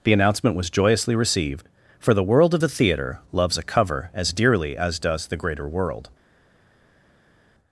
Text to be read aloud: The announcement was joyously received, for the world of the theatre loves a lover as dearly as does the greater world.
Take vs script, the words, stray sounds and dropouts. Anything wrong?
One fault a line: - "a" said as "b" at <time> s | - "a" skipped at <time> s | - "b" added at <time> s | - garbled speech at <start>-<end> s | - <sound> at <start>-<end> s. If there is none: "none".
- "lover" said as "cover" at 3.6 s